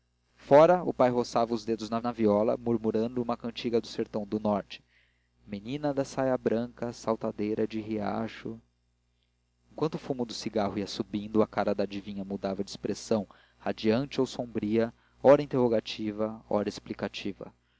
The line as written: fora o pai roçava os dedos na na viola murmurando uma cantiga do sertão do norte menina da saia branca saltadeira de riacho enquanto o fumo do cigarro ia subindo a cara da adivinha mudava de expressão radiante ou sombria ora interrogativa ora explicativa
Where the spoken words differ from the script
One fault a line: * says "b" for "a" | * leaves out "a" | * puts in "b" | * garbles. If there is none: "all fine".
all fine